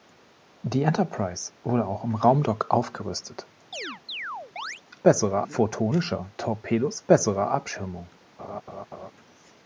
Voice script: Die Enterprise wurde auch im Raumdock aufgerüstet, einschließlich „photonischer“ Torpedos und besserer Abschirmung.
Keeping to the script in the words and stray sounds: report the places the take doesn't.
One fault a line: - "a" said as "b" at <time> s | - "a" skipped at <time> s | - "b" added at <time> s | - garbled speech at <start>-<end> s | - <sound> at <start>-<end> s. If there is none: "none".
- chirp at 3.7-4.8 s
- "einschließlich" said as "besserer" at 5.0 s
- "und" skipped at 7.0 s
- laugh at 8.4-9.1 s